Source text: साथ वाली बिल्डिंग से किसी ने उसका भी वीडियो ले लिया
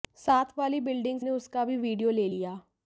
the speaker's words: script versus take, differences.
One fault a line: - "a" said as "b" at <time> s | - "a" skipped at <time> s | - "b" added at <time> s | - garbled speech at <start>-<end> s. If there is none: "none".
- "से किसी" skipped at 1.2 s